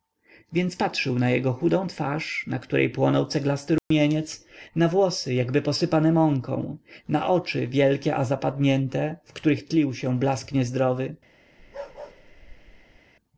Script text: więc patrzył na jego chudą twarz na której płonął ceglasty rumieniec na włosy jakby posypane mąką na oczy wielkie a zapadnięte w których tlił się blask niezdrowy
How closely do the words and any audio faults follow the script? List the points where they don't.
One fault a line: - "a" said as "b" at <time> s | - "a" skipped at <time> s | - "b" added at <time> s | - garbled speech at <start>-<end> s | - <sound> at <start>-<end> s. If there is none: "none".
- dropout at 3.8-3.9 s
- bark at 11.6-13.0 s